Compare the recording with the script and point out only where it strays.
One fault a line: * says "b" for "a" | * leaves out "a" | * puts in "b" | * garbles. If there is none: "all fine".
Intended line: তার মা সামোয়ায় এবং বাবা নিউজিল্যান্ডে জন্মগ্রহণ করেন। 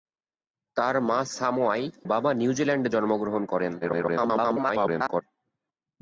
* leaves out "এবং"
* garbles